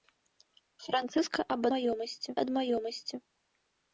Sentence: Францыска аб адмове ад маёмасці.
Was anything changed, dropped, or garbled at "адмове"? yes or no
yes